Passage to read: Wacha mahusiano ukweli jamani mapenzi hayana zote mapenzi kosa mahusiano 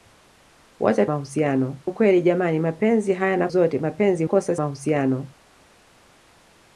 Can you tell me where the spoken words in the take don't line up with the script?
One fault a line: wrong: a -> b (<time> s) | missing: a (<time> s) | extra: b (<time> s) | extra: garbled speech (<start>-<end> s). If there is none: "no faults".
no faults